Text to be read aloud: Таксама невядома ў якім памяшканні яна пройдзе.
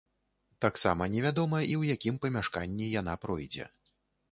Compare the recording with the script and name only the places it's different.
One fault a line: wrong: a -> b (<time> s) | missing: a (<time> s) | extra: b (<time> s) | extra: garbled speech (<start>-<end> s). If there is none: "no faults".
extra: і (1.6 s)